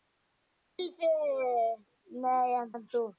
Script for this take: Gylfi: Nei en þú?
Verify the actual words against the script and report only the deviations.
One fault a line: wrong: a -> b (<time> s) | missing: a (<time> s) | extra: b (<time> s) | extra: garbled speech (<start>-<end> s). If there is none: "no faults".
extra: en (2.8 s)